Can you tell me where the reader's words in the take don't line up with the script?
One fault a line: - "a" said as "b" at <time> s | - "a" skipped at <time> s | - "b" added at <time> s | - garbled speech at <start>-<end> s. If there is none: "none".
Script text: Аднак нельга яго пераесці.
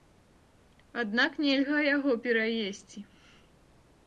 none